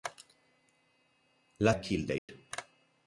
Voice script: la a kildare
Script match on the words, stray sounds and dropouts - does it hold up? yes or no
no